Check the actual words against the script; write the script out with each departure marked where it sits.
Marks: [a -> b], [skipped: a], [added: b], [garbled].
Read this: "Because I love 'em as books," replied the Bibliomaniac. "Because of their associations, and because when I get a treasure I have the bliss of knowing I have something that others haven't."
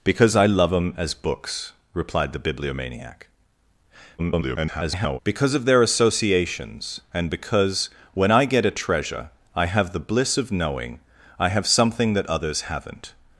"Because I love 'em as books," replied the Bibliomaniac. [garbled] "Because of their associations, and because when I get a treasure I have the bliss of knowing I have something that others haven't."